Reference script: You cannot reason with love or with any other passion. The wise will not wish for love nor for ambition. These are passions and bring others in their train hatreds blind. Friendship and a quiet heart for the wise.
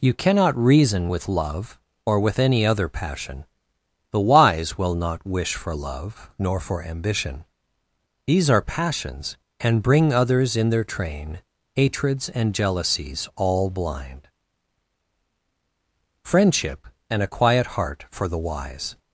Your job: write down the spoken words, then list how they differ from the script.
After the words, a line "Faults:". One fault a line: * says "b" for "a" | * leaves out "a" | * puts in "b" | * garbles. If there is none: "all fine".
You cannot reason with love or with any other passion. The wise will not wish for love nor for ambition. These are passions and bring others in their train hatreds and jealousies all blind. Friendship and a quiet heart for the wise.
Faults:
* puts in "and jealousies all"